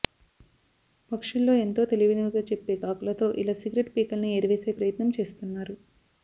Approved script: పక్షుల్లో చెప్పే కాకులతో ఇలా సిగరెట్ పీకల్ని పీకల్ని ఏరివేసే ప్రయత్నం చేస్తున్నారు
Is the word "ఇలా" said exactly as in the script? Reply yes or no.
yes